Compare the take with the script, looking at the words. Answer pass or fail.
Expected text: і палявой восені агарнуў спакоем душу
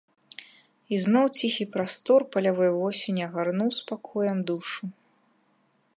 fail